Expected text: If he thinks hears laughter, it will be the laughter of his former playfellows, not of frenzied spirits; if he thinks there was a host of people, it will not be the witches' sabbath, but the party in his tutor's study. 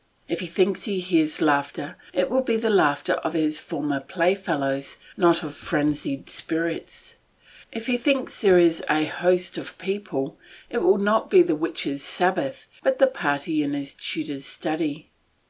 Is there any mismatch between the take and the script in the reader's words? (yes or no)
yes